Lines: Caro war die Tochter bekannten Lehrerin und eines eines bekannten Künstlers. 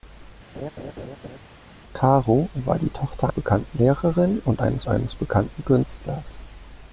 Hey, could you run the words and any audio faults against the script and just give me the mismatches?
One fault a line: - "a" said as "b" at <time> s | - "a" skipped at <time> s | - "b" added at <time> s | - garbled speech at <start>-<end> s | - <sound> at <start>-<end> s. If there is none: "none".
- laugh at 0.5-1.4 s